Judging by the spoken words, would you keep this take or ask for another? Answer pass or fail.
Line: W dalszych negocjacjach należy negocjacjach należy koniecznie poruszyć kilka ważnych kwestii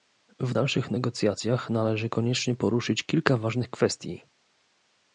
fail